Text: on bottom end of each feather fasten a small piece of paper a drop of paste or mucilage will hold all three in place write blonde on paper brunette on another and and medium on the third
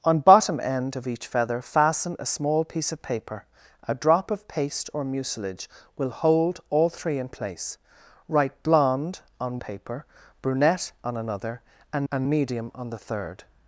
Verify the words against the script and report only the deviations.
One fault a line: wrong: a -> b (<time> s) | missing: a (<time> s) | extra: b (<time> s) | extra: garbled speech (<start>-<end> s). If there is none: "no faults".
no faults